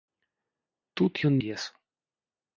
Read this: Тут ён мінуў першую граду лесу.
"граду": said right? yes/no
no